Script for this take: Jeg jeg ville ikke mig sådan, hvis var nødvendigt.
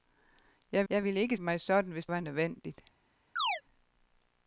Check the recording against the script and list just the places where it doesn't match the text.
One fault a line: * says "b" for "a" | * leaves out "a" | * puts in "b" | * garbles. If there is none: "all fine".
all fine